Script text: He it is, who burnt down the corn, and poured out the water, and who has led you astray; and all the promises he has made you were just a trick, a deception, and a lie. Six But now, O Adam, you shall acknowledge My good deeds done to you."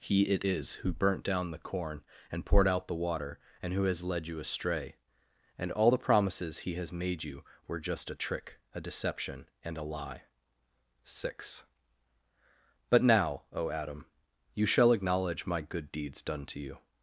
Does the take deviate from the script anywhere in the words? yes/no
no